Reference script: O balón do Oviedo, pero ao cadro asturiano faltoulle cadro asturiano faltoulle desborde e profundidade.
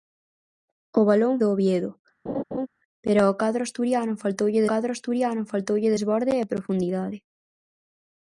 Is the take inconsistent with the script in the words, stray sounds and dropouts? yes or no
yes